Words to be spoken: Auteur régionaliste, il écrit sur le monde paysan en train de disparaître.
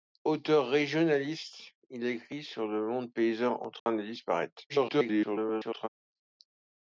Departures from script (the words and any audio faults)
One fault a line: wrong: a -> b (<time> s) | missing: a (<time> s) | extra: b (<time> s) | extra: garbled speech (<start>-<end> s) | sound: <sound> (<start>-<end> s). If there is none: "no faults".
sound: dropout (3.8-3.9 s)
extra: garbled speech (4.7-5.9 s)